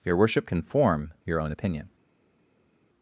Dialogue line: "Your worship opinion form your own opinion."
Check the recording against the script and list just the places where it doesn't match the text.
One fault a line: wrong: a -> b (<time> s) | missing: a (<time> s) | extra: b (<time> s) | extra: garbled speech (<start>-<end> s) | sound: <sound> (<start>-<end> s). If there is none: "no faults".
wrong: opinion -> can (0.5 s)